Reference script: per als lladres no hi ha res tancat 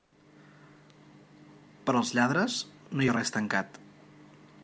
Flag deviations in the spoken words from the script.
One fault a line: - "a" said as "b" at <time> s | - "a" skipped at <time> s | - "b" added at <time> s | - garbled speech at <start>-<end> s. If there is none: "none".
none